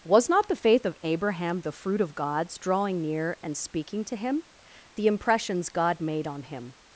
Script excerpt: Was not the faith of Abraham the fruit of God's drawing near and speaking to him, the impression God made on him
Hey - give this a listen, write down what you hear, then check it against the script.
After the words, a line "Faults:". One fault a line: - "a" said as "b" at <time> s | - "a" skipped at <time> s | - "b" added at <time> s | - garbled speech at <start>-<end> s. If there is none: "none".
Was not the faith of Abraham the fruit of God's drawing near and speaking to him, the impressions God made on him
Faults:
- "impression" said as "impressions" at 5.1 s